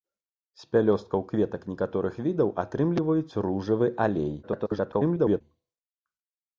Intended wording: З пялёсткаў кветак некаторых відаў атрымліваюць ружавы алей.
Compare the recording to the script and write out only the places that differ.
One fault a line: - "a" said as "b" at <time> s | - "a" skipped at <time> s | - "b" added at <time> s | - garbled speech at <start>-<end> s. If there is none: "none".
- garbled speech at 4.4-5.4 s